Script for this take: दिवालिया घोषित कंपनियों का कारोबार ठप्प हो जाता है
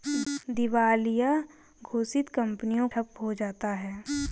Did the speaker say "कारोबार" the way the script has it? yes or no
no